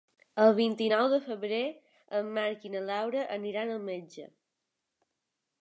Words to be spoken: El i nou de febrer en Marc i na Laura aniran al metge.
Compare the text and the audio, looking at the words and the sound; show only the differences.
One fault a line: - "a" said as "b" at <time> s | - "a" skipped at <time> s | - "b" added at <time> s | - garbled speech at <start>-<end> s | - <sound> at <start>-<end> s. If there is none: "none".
- "vint" added at 0.6 s